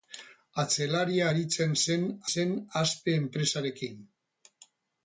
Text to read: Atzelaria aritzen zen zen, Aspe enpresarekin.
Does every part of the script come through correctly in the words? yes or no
yes